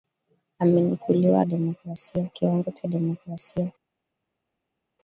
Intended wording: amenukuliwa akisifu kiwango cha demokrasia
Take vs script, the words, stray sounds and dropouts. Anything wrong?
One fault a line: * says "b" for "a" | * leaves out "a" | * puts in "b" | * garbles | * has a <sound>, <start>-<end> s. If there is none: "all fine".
* says "demokrasia" for "akisifu"